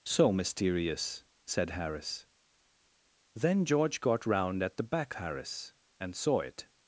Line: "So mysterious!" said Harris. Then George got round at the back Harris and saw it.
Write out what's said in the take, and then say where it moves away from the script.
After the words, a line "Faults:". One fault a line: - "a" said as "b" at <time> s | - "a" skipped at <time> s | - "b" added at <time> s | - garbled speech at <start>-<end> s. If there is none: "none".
"So mysterious!" said Harris. Then George got round at the back Harris and saw it.
Faults:
none